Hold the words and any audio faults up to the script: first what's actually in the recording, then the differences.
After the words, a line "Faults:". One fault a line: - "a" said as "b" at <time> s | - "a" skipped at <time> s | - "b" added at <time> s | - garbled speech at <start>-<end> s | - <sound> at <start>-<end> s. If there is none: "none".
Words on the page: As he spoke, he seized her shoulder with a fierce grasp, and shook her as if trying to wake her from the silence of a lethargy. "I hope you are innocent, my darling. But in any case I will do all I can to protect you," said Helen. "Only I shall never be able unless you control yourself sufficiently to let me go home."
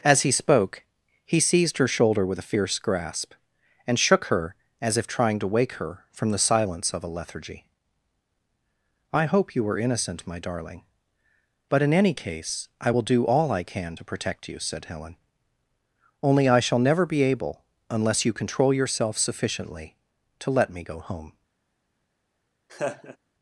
As he spoke, he seized her shoulder with a fierce grasp, and shook her as if trying to wake her from the silence of a lethargy. "I hope you were innocent, my darling. But in any case I will do all I can to protect you," said Helen. "Only I shall never be able unless you control yourself sufficiently to let me go home."
Faults:
- "are" said as "were" at 9.6 s
- laugh at 22.7-23.2 s